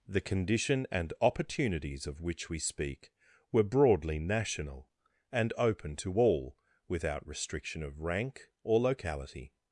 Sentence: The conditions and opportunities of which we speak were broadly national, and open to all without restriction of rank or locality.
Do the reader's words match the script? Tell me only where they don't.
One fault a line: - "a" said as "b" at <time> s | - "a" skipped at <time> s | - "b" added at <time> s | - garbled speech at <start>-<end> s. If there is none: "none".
- "conditions" said as "condition" at 0.2 s